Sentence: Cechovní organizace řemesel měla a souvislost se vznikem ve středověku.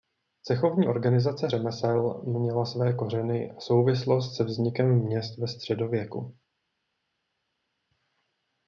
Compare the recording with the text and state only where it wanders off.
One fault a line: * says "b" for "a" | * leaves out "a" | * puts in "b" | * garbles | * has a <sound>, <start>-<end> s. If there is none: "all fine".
* puts in "své kořeny"
* puts in "měst"